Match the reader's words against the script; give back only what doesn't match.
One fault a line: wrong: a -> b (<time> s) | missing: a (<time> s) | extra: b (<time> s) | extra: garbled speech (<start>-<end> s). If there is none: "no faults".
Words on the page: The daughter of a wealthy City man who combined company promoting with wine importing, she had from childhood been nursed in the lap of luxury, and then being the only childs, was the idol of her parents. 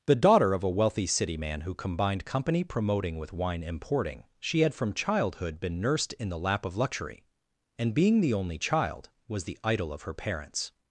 missing: then (7.9 s)
wrong: childs -> child (8.6 s)